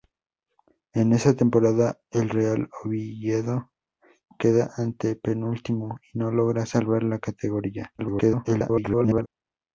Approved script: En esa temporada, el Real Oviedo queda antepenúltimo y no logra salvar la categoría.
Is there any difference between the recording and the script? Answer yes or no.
yes